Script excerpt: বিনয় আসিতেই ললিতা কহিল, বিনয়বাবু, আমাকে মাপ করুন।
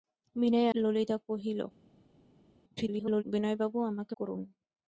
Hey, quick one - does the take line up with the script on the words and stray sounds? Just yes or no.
no